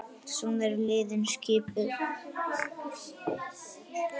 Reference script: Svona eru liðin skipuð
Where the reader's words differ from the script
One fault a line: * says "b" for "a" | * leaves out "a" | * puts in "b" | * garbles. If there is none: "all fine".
all fine